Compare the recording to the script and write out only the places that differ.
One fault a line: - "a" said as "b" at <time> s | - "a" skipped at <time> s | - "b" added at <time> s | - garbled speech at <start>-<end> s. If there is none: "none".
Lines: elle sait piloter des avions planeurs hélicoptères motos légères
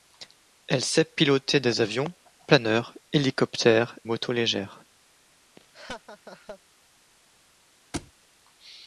none